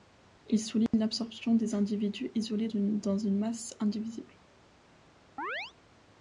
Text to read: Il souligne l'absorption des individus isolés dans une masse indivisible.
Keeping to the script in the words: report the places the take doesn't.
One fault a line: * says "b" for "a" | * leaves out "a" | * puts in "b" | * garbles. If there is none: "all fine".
* leaves out "dans"